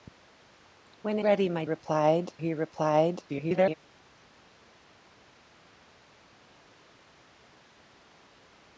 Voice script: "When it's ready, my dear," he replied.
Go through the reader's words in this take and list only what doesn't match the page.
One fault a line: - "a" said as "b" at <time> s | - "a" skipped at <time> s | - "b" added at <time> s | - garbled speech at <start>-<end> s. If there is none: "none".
- "it's" skipped at 1.2 s
- "dear" said as "replied" at 1.6 s
- garbled speech at 3.3-3.7 s